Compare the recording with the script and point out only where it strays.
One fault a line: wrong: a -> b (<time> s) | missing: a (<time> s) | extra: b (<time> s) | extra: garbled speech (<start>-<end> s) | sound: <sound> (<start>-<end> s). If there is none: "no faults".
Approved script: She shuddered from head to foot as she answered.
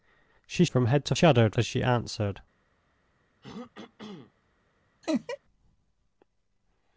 missing: shuddered (0.7 s)
wrong: foot -> shuddered (1.1 s)
sound: throat clearing (3.4-4.3 s)
sound: laugh (5.0-5.4 s)